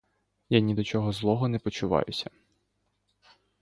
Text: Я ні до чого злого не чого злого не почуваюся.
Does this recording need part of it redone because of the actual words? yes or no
yes